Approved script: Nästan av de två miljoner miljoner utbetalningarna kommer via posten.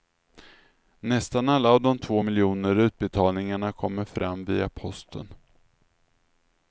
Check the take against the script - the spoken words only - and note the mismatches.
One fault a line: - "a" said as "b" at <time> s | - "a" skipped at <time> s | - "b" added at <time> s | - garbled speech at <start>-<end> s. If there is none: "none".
- "alla" added at 1.5 s
- "miljoner" skipped at 2.8 s
- "fram" added at 4.0 s